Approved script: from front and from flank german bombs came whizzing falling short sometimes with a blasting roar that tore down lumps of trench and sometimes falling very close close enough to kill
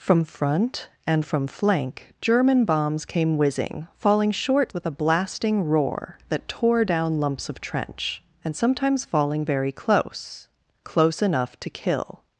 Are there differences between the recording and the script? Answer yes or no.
yes